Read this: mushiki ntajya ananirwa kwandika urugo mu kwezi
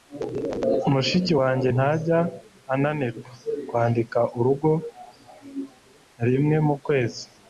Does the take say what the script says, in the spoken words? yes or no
no